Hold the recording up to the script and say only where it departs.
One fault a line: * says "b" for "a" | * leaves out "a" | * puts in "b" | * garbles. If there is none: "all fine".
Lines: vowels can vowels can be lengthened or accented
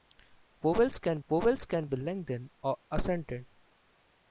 all fine